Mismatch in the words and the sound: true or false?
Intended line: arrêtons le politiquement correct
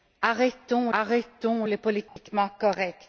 true